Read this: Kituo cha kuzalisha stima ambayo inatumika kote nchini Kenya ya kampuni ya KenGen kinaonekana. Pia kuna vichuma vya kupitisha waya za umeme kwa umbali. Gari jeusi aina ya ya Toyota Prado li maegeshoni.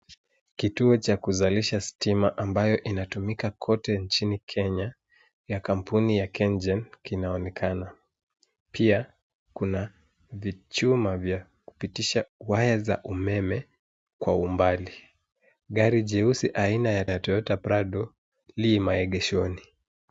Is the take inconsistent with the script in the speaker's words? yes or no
no